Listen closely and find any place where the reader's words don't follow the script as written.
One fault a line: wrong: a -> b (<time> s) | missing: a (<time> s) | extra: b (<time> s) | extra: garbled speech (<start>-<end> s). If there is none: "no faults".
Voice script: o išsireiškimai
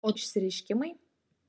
no faults